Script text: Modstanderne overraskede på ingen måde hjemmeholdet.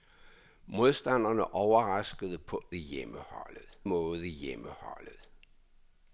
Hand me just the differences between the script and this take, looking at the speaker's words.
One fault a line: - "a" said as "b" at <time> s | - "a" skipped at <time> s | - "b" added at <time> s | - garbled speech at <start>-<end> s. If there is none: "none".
- "ingen" said as "hjemmeholdet" at 2.7 s